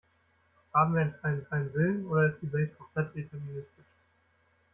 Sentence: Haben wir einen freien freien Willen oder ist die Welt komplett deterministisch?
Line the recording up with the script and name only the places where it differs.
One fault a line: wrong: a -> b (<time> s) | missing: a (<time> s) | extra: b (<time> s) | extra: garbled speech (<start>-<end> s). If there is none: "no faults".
no faults